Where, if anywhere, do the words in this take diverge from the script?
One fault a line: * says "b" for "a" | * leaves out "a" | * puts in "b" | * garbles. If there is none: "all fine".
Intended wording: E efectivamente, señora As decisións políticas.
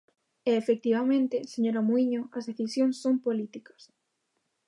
* puts in "Muíño"
* puts in "son"